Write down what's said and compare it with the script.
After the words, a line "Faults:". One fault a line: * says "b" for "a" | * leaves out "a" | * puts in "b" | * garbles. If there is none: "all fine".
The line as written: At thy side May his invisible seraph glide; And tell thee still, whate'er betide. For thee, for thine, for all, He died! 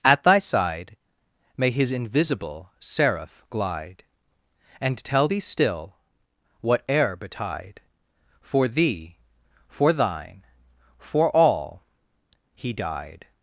At thy side May his invisible seraph glide; And tell thee still, whate'er betide. For thee, for thine, for all, He died!
Faults:
all fine